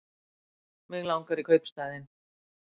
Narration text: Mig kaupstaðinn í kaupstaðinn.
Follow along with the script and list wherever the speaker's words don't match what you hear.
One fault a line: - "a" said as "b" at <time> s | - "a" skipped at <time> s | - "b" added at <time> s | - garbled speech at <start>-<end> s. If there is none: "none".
- "kaupstaðinn" said as "langar" at 1.1 s